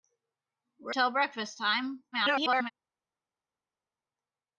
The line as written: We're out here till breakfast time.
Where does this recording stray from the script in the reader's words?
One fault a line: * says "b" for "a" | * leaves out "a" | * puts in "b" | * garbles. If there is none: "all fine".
* leaves out "out here"
* garbles